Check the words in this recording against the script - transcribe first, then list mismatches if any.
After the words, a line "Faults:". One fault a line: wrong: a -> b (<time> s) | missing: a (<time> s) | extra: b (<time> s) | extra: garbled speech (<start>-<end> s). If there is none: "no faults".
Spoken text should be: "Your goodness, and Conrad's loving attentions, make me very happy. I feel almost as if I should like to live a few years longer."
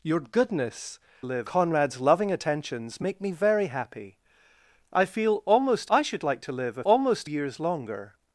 "Your goodness, live Conrad's loving attentions, make me very happy. I feel almost I should like to live a almost years longer."
Faults:
wrong: and -> live (1.2 s)
missing: as if (5.9 s)
wrong: few -> almost (6.8 s)